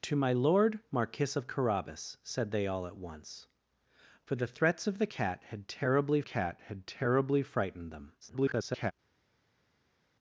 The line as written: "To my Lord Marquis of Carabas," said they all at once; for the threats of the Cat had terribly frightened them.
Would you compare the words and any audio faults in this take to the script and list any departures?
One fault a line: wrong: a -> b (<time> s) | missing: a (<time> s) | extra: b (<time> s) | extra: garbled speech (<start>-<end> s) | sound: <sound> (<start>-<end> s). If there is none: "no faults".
extra: Cat had terribly (6.2 s)
extra: garbled speech (8.2-8.9 s)